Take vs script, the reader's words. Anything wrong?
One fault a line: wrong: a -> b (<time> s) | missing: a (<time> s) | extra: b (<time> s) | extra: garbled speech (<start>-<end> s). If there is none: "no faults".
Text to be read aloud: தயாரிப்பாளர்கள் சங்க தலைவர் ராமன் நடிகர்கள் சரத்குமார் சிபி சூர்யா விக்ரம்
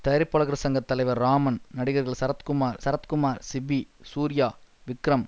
extra: சரத்குமார் (2.8 s)